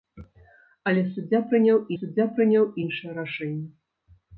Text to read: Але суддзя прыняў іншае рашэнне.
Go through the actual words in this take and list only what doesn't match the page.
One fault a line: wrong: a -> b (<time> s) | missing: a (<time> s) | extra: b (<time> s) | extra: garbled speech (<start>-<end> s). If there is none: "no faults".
extra: суддзя прыняў (2.0 s)